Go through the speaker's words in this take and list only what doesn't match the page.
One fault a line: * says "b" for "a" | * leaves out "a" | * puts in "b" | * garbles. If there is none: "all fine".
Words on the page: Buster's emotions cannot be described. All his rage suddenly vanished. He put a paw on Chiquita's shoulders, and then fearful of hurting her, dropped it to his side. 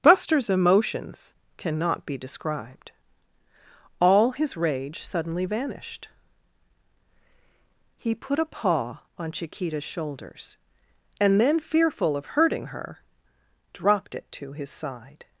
all fine